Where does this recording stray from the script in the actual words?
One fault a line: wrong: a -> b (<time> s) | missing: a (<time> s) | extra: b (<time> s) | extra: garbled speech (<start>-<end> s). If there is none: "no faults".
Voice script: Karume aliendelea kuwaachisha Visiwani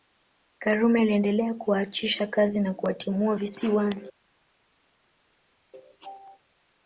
extra: kazi na kuwatimua (2.3 s)